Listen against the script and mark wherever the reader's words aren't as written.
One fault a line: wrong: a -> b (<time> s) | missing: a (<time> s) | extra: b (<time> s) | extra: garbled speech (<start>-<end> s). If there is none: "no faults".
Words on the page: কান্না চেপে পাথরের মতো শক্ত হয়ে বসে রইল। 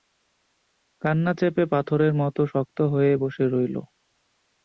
no faults